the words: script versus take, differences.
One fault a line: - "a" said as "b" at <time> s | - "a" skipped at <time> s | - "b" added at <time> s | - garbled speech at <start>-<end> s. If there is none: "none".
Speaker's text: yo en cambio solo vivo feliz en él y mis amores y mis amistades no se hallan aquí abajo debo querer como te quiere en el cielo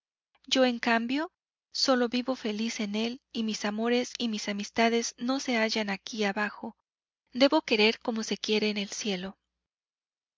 - "te" said as "se" at 8.2 s